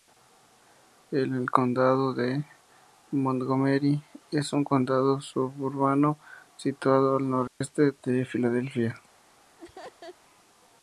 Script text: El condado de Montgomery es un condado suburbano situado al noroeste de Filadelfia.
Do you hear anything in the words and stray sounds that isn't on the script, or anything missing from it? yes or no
yes